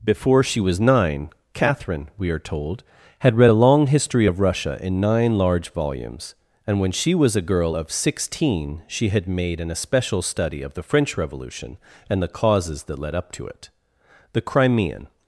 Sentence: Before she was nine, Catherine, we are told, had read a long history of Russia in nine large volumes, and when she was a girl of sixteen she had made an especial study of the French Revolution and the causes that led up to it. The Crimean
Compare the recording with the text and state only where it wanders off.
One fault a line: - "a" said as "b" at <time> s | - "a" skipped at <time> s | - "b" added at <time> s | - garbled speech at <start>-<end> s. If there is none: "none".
none